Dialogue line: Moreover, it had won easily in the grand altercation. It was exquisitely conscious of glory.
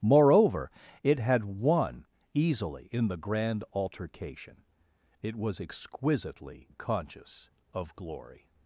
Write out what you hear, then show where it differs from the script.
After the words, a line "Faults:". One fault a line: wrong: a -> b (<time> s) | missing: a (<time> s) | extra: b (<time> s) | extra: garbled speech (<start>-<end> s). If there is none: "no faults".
Moreover, it had won easily in the grand altercation. It was exquisitely conscious of glory.
Faults:
no faults